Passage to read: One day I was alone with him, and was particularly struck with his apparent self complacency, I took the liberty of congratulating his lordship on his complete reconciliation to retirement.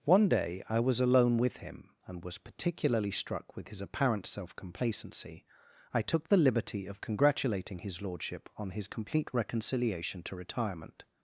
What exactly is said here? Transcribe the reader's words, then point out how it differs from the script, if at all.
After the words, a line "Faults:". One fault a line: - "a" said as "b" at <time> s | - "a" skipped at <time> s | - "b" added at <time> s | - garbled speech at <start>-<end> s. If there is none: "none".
One day I was alone with him, and was particularly struck with his apparent self complacency, I took the liberty of congratulating his lordship on his complete reconciliation to retirement.
Faults:
none